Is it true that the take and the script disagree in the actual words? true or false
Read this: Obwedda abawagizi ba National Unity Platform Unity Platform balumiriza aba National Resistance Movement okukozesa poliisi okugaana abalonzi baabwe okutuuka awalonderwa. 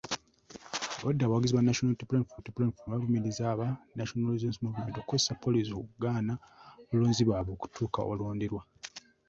false